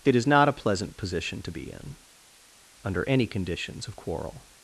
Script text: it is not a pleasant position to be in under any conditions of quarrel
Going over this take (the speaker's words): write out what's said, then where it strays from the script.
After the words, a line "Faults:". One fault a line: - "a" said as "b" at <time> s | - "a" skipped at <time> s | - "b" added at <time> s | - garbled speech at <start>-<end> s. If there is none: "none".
it is not a pleasant position to be in under any conditions of quarrel
Faults:
none